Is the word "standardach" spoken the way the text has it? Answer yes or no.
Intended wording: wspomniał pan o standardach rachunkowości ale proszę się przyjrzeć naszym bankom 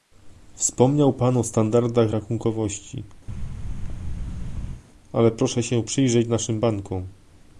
yes